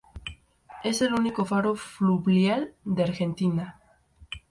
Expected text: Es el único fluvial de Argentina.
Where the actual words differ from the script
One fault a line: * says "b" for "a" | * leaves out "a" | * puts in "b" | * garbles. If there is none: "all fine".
* puts in "faro"